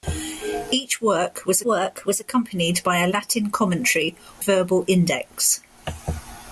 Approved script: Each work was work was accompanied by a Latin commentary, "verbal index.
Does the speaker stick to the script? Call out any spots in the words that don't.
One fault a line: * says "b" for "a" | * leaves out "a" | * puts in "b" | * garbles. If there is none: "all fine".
all fine